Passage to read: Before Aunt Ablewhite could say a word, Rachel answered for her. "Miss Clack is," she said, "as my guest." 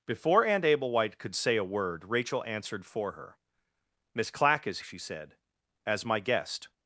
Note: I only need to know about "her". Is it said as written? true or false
true